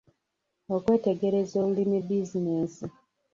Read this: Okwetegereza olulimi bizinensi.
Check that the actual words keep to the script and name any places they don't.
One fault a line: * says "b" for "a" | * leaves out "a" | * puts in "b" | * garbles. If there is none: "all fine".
all fine